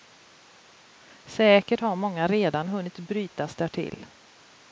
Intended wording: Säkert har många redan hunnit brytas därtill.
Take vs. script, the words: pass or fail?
pass